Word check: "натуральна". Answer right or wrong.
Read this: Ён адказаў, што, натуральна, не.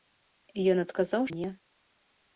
wrong